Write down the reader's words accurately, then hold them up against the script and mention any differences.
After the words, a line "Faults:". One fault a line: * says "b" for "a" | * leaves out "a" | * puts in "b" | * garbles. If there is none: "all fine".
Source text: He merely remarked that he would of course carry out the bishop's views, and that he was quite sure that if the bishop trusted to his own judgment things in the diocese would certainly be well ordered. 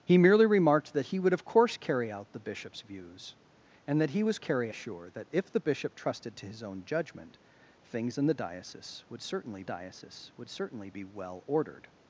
He merely remarked that he would of course carry out the bishop's views, and that he was carry sure that if the bishop trusted to his own judgment things in the diocese would certainly diocese would certainly be well ordered.
Faults:
* says "carry" for "quite"
* puts in "diocese would certainly"